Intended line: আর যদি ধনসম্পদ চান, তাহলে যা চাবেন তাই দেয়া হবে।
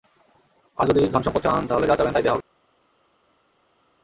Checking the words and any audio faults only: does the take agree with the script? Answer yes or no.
yes